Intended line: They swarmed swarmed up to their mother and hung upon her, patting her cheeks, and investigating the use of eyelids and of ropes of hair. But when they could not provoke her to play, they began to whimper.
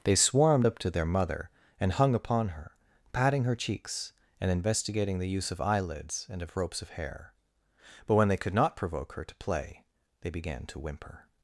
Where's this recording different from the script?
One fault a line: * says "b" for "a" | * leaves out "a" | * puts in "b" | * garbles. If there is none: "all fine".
* leaves out "swarmed"